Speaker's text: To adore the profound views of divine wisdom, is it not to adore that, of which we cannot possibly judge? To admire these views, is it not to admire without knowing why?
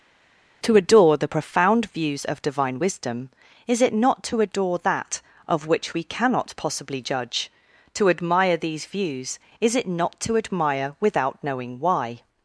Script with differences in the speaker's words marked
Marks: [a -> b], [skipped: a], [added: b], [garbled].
To adore the profound views of divine wisdom, is it not to adore that, of which we cannot possibly judge? To admire these views, is it not to admire without knowing why?